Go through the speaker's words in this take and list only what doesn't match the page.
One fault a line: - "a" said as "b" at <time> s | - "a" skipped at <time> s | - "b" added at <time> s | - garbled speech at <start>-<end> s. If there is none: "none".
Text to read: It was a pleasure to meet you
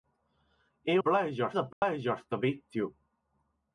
- "was" said as "pleasure" at 1.0 s